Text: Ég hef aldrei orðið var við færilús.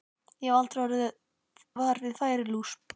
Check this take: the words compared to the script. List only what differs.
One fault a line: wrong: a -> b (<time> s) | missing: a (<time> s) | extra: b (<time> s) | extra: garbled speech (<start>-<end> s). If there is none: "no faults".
no faults